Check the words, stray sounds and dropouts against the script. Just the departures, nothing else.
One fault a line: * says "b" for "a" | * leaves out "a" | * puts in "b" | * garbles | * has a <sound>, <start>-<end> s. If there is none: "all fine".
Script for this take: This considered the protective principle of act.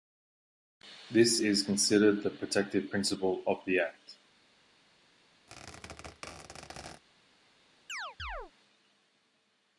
* puts in "is"
* puts in "the"
* has a squeak, 5.5-7.0 s
* has a chirp, 7.9-8.5 s